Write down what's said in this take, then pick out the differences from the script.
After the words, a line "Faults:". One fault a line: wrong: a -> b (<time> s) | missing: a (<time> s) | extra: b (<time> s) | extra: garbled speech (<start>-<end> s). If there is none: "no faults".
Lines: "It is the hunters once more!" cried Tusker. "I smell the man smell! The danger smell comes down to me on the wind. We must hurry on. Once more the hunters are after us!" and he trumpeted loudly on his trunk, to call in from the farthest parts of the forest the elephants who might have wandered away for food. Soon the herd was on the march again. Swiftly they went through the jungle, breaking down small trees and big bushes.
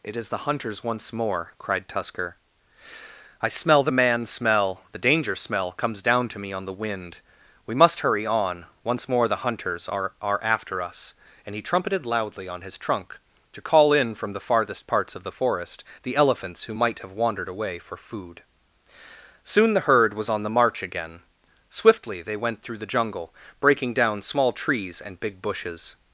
"It is the hunters once more!" cried Tusker. "I smell the man smell! The danger smell comes down to me on the wind. We must hurry on. Once more the hunters are are after us!" and he trumpeted loudly on his trunk, to call in from the farthest parts of the forest the elephants who might have wandered away for food. Soon the herd was on the march again. Swiftly they went through the jungle, breaking down small trees and big bushes.
Faults:
extra: are (10.2 s)